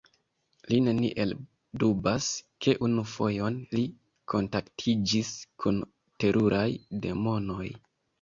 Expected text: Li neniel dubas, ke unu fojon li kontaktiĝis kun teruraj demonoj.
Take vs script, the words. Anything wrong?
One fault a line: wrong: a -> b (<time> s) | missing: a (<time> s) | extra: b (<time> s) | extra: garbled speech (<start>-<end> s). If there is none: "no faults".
no faults